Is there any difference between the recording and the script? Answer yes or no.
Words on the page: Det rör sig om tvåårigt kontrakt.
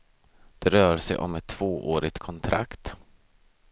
yes